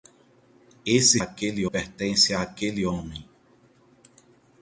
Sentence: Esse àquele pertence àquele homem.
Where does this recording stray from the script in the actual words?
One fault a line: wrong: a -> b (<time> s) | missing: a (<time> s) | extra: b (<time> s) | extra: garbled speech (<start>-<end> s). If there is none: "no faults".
no faults